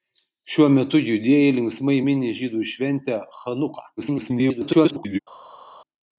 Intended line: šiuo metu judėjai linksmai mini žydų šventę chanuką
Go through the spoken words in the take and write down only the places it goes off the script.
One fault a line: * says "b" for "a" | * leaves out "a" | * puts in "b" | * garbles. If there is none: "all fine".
* garbles